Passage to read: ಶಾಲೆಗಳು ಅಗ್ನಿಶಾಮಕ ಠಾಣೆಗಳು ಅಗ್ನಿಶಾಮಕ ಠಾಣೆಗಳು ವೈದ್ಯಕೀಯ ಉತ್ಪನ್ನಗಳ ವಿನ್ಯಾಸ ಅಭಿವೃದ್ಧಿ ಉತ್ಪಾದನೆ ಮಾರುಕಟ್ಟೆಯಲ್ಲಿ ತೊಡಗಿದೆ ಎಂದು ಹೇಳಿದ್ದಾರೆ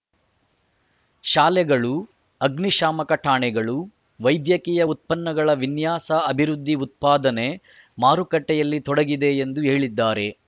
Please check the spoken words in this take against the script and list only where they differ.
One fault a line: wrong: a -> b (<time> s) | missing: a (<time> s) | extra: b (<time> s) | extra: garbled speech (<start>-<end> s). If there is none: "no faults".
missing: ಅಗ್ನಿಶಾಮಕ ಠಾಣೆಗಳು (3.8 s)